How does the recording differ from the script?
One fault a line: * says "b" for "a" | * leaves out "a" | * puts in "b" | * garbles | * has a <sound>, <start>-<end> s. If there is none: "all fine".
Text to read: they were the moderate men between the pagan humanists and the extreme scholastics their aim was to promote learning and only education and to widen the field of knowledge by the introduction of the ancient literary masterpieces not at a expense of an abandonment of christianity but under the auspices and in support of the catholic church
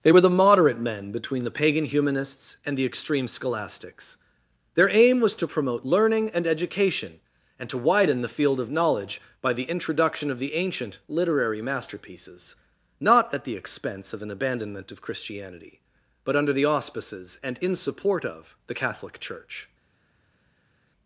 * leaves out "only"
* says "the" for "a"